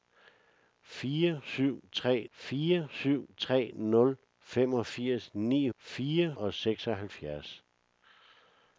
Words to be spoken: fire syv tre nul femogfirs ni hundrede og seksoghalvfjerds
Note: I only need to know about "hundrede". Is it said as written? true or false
false